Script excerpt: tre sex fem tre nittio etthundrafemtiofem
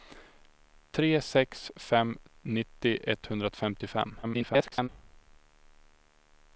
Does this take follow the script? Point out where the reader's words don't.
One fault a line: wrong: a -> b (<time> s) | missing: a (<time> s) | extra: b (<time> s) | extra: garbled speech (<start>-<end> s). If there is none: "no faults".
missing: tre (2.1 s)
extra: garbled speech (4.2-4.9 s)